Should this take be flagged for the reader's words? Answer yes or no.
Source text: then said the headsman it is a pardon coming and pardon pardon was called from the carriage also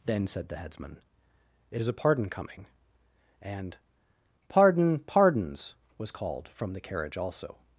yes